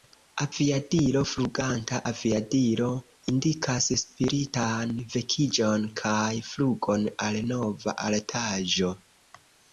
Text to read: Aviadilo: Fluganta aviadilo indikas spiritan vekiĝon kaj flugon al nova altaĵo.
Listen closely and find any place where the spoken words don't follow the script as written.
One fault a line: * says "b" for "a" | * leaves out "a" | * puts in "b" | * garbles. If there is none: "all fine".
all fine